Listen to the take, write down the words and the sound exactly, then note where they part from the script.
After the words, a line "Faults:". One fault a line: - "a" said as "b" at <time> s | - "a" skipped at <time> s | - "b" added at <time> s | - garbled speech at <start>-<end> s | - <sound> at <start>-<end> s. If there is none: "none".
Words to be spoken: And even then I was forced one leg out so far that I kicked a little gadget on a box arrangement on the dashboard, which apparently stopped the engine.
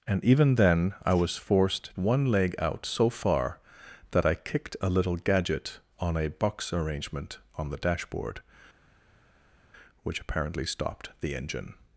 And even then I was forced one leg out so far that I kicked a little gadget on a box arrangement on the dashboard, which apparently stopped the engine.
Faults:
none